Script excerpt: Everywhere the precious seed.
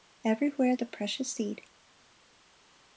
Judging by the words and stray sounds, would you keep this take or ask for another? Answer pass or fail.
pass